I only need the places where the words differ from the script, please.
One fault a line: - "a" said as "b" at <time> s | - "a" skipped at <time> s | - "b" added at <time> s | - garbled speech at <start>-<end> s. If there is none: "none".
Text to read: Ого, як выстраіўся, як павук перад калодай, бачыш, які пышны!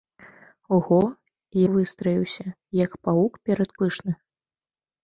- "як" skipped at 1.0 s
- "калодай бачыш які" skipped at 3.7 s